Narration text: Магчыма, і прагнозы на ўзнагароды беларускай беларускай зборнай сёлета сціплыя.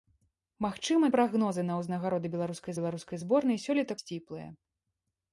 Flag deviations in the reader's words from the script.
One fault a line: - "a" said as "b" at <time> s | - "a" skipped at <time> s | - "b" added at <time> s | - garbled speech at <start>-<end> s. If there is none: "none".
none